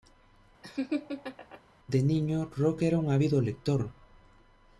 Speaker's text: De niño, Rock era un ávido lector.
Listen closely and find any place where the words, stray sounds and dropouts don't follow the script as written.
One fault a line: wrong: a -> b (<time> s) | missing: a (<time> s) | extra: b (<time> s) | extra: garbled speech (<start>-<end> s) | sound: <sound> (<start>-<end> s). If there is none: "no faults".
sound: laugh (0.6-1.6 s)